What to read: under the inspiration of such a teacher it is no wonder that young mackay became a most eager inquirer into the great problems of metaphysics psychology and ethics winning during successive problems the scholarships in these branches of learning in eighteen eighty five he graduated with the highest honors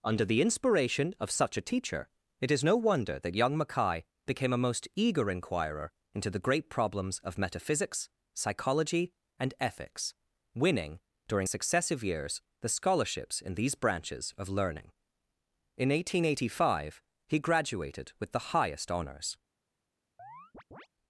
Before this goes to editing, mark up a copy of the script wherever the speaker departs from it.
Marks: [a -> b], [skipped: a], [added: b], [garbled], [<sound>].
under the inspiration of such a teacher it is no wonder that young mackay became a most eager inquirer into the great problems of metaphysics psychology and ethics winning during successive [problems -> years] the scholarships in these branches of learning in eighteen eighty five he graduated with the highest honors [chirp]